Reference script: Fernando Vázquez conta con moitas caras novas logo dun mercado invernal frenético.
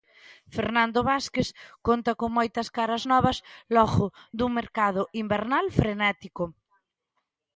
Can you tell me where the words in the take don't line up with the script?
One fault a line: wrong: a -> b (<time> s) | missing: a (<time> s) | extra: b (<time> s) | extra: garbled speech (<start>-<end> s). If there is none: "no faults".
no faults